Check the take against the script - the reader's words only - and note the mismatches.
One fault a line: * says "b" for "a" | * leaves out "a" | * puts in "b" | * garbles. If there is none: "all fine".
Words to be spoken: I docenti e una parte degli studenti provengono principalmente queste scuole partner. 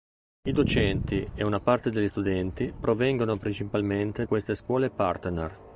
all fine